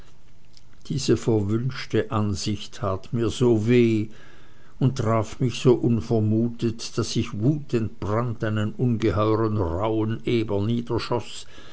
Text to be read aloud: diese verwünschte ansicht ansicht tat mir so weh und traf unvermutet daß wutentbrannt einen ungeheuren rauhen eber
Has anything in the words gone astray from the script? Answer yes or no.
yes